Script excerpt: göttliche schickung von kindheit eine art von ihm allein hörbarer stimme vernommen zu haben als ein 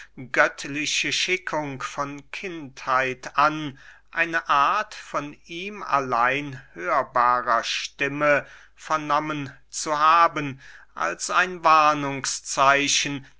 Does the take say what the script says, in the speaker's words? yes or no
no